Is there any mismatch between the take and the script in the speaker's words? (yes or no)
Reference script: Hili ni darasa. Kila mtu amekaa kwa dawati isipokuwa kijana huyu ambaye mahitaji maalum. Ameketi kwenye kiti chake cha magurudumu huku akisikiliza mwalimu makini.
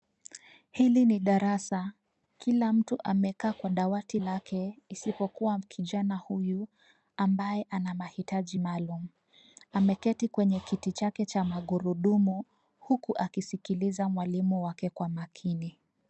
yes